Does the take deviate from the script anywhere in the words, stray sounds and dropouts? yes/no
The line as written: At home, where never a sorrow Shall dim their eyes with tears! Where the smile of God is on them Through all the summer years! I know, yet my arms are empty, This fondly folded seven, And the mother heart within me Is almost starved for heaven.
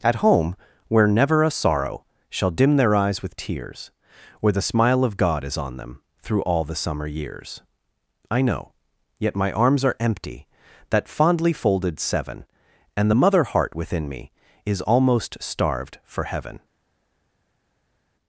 yes